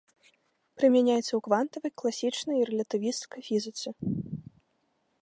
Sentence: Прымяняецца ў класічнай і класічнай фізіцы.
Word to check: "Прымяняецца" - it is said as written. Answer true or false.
true